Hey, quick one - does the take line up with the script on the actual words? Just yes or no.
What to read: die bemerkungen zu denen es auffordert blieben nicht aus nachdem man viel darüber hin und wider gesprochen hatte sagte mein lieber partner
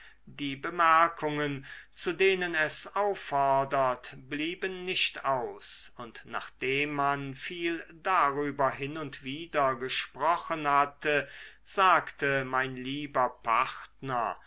no